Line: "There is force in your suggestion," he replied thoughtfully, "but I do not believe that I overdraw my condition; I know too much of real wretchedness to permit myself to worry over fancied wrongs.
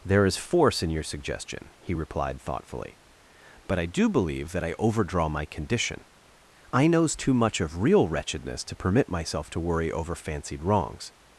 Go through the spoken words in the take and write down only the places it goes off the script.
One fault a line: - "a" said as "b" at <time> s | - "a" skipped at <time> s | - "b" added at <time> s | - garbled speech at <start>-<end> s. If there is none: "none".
- "not" skipped at 4.1 s
- "know" said as "knows" at 6.9 s